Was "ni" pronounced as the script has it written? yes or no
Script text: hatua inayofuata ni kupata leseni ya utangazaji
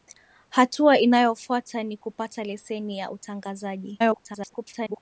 yes